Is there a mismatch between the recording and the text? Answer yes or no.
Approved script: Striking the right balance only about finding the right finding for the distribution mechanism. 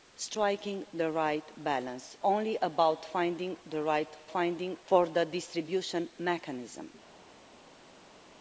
no